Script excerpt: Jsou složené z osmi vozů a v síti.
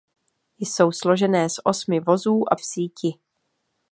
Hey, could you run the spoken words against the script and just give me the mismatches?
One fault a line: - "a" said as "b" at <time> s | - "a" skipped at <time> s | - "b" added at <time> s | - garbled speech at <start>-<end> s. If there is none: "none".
none